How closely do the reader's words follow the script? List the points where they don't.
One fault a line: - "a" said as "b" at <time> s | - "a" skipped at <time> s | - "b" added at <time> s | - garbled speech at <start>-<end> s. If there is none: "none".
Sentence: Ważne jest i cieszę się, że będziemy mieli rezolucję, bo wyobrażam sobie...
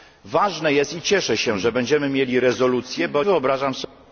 none